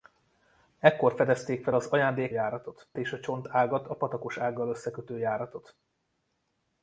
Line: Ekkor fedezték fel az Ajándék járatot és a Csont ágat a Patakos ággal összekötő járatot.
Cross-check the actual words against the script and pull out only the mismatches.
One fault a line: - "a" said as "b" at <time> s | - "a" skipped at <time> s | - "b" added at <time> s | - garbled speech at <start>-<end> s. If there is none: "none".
none